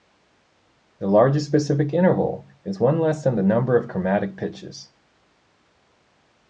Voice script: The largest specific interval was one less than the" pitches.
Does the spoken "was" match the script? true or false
false